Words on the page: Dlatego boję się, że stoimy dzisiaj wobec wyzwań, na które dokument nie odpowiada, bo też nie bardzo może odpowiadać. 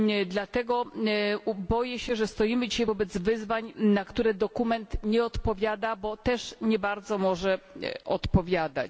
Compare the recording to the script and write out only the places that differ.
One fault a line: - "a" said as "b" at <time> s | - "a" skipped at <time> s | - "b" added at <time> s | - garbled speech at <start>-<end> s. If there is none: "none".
none